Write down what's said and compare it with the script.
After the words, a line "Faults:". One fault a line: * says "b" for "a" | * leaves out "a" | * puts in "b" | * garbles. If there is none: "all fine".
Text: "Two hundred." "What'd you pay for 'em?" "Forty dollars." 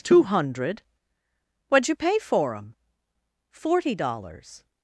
"Two hundred." "What'd you pay for 'em?" "Forty dollars."
Faults:
all fine